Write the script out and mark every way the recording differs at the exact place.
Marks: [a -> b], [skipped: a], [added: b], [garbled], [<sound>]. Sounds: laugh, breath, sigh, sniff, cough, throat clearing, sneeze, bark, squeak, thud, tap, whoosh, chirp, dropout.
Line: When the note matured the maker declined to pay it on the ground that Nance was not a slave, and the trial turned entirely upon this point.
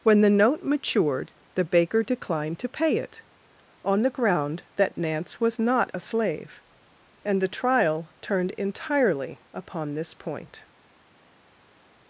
When the note matured the [maker -> baker] declined to pay it on the ground that Nance was not a slave, and the trial turned entirely upon this point.